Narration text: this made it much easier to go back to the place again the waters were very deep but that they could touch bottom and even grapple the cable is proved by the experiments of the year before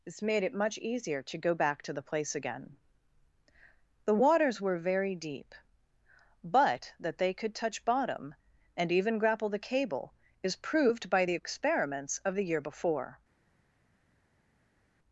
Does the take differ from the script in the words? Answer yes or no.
no